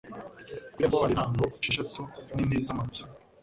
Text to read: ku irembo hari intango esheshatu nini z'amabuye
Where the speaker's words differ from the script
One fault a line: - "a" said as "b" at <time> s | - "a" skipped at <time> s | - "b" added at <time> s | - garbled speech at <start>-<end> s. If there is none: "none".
none